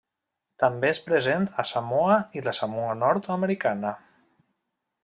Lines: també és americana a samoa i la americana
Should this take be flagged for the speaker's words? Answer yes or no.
yes